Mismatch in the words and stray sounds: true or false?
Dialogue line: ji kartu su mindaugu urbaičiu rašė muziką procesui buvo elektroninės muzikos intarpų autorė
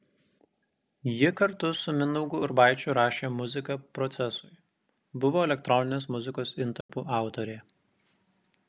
true